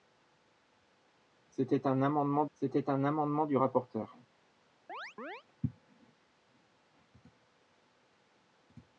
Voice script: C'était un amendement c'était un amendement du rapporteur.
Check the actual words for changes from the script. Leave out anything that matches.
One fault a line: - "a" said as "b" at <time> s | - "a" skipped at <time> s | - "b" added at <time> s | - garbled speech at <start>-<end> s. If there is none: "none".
none